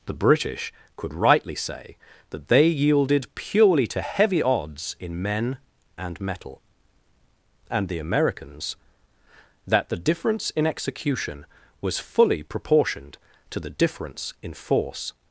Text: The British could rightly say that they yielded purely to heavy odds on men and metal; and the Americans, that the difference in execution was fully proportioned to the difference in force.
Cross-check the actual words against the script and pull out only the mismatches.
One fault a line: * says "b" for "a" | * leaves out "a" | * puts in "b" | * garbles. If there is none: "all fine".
* says "in" for "on"